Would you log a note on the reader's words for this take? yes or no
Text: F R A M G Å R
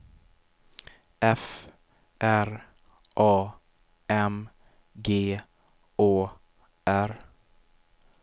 no